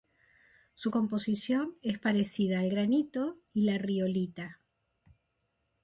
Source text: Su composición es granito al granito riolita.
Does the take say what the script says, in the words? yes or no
no